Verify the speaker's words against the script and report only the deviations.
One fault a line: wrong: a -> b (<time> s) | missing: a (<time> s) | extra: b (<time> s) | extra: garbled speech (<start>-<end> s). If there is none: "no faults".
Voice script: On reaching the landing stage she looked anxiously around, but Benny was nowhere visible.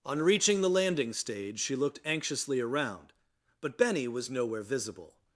no faults